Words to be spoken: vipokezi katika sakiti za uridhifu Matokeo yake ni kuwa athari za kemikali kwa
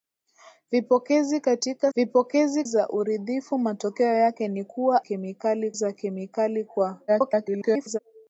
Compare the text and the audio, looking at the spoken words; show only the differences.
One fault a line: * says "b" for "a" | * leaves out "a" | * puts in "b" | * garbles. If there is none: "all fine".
* says "vipokezi" for "sakiti"
* says "kemikali" for "athari"
* garbles